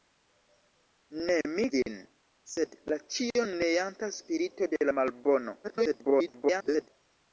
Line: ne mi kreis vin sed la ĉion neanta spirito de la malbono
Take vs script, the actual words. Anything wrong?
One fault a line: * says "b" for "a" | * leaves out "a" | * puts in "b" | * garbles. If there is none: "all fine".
* leaves out "kreis"
* garbles